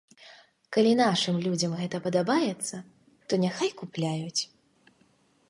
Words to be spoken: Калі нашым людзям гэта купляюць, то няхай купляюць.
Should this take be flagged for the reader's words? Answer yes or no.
yes